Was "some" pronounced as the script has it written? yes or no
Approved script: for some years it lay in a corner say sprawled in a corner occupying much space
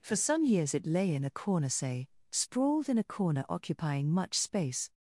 yes